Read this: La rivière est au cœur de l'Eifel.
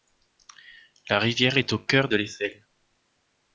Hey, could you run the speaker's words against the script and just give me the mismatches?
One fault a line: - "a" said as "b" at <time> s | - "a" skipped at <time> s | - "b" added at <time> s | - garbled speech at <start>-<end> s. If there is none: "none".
none